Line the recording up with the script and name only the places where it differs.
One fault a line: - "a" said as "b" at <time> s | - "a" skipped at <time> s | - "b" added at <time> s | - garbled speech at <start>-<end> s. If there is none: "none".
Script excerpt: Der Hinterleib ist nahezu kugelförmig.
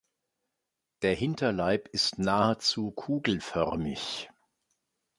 none